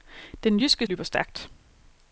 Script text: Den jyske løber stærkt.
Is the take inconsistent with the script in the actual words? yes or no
no